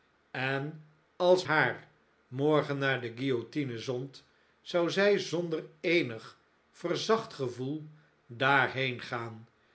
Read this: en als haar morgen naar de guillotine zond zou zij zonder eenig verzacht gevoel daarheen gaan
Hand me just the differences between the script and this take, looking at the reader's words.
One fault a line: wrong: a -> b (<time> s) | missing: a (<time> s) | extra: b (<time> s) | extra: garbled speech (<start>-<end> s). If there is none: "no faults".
no faults